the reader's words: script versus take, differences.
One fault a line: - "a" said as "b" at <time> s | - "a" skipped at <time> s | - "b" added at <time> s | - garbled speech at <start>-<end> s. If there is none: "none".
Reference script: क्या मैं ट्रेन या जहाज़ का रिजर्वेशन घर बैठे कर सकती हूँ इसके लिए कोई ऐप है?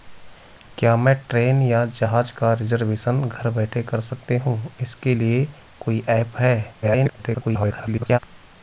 - garbled speech at 6.8-8.2 s